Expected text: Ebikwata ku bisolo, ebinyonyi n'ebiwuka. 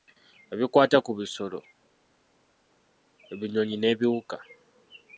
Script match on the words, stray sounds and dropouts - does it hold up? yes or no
yes